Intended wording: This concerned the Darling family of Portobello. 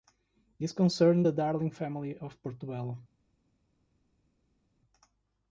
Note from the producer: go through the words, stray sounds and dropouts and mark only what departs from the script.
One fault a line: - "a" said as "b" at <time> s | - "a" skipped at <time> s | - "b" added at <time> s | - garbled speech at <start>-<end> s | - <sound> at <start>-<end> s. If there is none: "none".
none